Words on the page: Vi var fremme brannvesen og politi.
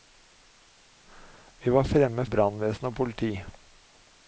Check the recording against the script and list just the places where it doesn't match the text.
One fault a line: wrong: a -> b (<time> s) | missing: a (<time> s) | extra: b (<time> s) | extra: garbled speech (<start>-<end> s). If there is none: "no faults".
no faults